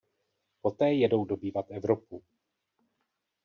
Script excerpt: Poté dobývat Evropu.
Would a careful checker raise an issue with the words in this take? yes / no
yes